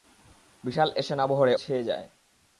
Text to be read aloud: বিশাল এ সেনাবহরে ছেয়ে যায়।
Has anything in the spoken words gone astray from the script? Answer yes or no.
no